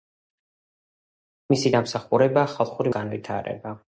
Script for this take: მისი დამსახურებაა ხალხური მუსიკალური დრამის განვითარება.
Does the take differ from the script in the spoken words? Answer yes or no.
yes